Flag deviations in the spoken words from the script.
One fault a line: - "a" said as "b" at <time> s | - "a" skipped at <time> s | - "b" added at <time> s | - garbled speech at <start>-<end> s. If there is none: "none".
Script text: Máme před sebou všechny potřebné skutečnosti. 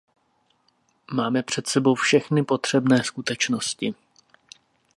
none